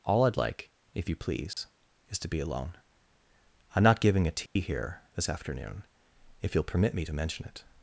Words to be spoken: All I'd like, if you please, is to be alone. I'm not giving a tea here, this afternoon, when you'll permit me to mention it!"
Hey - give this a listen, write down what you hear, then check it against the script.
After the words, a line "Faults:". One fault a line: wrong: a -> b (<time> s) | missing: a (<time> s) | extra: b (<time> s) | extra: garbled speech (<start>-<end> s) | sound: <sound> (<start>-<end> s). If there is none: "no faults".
All I'd like, if you please, is to be alone. I'm not giving a tea here, this afternoon, if you'll permit me to mention it!"
Faults:
sound: dropout (1.5-1.6 s)
sound: dropout (4.5-4.6 s)
wrong: when -> if (6.4 s)